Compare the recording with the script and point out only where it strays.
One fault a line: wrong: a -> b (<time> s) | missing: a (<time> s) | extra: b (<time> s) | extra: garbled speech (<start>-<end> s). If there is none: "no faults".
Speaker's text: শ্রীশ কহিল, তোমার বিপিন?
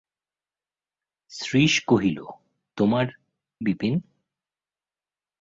no faults